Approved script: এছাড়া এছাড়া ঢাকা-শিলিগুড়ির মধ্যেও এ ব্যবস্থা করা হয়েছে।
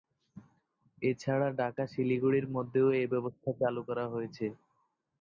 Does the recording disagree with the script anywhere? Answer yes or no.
yes